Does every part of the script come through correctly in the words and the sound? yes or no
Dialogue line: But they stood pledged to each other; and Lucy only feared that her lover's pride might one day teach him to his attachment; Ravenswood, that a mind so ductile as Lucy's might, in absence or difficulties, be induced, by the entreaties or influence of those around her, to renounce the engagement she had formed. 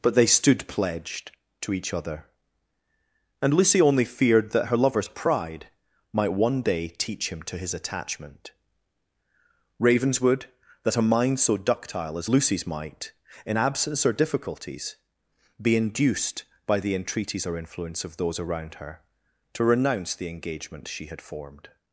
yes